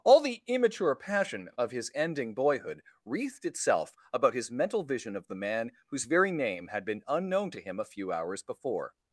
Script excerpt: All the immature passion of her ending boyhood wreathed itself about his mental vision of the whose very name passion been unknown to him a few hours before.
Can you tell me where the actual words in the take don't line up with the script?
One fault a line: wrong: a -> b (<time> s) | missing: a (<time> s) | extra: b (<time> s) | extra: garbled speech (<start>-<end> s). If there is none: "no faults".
wrong: her -> his (1.7 s)
extra: man (5.3 s)
wrong: passion -> had (6.7 s)